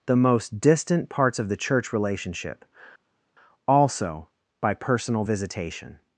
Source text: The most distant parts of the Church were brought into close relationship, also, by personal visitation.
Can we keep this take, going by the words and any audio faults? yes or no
no